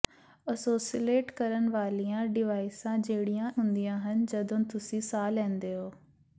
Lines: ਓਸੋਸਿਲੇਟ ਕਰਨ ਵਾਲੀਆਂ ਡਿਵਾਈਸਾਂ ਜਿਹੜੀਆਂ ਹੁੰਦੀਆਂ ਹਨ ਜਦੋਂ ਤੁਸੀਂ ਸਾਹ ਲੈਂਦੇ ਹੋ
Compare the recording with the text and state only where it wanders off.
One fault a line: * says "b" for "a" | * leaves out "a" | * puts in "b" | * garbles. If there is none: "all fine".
all fine